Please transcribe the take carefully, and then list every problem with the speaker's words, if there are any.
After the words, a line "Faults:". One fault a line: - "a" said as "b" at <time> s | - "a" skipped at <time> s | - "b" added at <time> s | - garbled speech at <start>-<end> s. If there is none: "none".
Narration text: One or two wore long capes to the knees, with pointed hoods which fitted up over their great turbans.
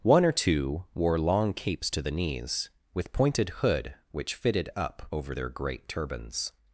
One or two wore long capes to the knees, with pointed hood which fitted up over their great turbans.
Faults:
- "hoods" said as "hood" at 3.5 s